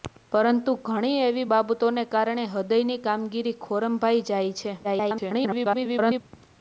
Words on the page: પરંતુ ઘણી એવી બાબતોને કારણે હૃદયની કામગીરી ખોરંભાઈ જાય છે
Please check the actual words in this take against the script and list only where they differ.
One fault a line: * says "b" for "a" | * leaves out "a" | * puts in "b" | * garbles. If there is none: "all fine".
* garbles